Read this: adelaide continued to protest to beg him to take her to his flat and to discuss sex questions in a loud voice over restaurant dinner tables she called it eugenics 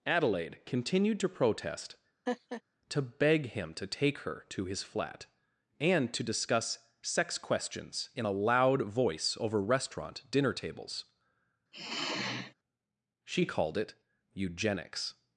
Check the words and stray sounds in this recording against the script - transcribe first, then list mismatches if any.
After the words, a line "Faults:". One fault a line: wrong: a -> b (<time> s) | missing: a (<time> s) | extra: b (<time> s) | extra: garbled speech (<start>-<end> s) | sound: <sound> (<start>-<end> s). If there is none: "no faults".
adelaide continued to protest to beg him to take her to his flat and to discuss sex questions in a loud voice over restaurant dinner tables she called it eugenics
Faults:
sound: laugh (2.3-2.6 s)
sound: sigh (11.7-12.5 s)